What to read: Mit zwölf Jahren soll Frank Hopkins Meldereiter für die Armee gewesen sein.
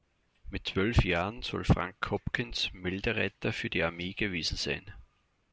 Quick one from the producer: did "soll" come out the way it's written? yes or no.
yes